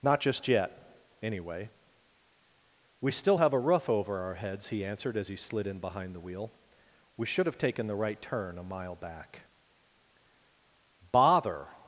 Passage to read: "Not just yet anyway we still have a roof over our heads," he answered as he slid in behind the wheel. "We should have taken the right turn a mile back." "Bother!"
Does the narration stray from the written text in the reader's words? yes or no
no